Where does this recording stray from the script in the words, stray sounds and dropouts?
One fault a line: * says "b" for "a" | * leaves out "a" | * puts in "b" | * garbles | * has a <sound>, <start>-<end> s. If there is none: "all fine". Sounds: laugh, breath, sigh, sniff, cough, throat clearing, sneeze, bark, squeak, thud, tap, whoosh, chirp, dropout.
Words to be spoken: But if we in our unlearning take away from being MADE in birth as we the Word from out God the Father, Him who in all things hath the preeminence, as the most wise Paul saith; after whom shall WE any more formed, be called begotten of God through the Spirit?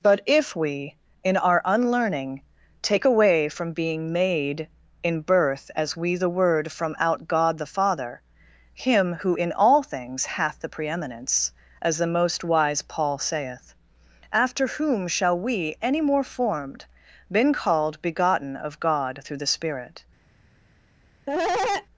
* says "been" for "be"
* has a cough, 21.3-21.9 s